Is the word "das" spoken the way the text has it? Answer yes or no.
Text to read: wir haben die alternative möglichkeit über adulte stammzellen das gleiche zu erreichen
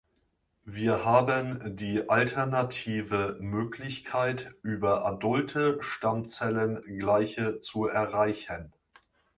no